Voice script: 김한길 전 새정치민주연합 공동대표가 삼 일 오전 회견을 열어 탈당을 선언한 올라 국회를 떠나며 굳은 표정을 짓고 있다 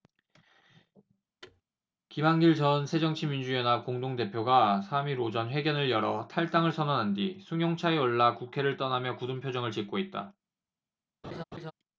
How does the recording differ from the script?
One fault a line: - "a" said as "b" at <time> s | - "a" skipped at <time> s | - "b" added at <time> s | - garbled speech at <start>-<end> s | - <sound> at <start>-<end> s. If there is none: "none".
- thud at 1.4-1.6 s
- "뒤 승용차에" added at 7.1 s
- laugh at 11.2-11.7 s